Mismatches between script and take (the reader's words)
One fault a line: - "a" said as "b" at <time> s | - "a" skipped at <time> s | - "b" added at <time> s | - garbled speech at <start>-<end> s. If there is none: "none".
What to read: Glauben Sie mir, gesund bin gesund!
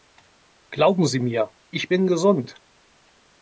- "gesund" said as "ich" at 1.7 s